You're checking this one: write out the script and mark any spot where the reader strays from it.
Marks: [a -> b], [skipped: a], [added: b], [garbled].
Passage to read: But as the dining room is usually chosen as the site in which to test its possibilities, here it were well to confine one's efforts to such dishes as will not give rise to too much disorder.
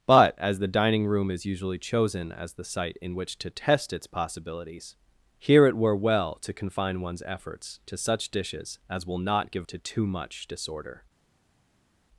But as the dining room is usually chosen as the site in which to test its possibilities, here it were well to confine one's efforts to such dishes as will not give [skipped: rise] to too much disorder.